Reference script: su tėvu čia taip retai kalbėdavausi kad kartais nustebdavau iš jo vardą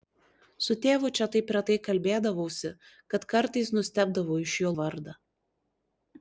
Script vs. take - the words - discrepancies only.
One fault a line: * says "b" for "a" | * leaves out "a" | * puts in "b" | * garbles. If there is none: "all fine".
all fine